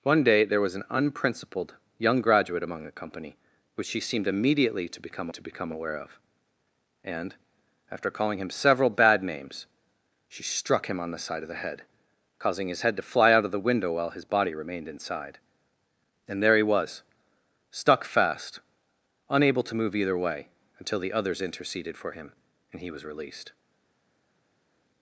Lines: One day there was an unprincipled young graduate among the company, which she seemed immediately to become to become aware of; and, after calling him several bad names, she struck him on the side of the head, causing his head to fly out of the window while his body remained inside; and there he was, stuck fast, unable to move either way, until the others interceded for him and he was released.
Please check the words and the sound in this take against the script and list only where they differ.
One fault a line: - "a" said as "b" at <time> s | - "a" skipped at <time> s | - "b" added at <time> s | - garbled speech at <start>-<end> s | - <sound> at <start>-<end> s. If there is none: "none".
none